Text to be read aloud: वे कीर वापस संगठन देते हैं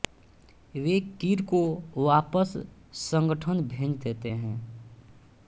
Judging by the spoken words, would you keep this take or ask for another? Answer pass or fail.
fail